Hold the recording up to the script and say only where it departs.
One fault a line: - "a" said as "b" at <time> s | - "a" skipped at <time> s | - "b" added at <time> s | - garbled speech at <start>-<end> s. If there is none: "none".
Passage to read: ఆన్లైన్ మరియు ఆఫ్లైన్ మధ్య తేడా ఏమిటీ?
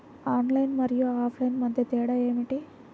none